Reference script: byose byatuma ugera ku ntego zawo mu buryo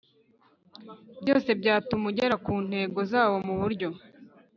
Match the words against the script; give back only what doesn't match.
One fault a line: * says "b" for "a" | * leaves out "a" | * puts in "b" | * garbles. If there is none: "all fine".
all fine